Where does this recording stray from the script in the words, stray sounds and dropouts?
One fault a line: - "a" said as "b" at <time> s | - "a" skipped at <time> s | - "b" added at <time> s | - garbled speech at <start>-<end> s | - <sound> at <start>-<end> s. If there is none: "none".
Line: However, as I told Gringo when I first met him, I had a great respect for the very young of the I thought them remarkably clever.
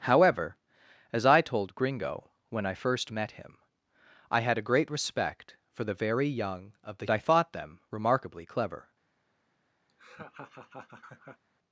- laugh at 9.9-11.4 s